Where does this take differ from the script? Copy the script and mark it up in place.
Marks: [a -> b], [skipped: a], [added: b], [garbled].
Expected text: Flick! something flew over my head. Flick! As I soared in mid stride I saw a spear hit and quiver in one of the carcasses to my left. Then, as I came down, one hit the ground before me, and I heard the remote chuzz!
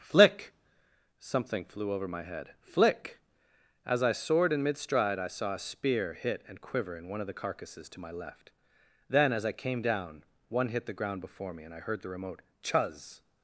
Flick! something flew over my head. Flick! As I soared in mid stride I saw a spear hit and quiver in one of the carcasses to my left. Then, as I came down, one hit the ground before me, and I heard the remote chuzz!